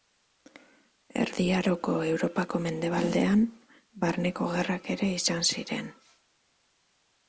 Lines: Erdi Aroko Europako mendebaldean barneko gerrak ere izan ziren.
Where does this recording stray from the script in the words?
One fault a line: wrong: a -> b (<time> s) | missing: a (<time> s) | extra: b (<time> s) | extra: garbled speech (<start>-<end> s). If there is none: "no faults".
no faults